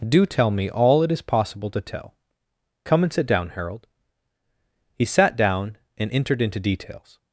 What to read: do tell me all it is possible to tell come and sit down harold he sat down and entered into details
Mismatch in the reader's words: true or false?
false